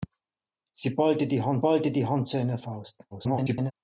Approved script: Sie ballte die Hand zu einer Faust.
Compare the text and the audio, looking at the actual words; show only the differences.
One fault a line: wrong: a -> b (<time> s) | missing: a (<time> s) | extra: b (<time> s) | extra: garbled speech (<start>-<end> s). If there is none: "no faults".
extra: ballte die Hand (1.6 s)
extra: garbled speech (3.1-3.7 s)